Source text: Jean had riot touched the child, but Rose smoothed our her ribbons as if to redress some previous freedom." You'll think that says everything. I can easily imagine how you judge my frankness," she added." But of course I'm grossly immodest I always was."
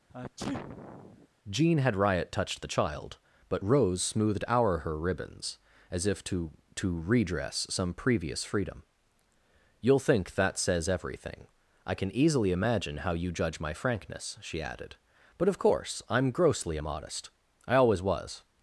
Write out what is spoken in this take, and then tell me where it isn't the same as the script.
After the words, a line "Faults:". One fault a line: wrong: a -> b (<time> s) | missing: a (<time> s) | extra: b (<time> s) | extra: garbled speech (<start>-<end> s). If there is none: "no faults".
Jean had riot touched the child, but Rose smoothed our her ribbons as if to to redress some previous freedom." You'll think that says everything. I can easily imagine how you judge my frankness," she added." But of course I'm grossly immodest I always was."
Faults:
extra: to (6.8 s)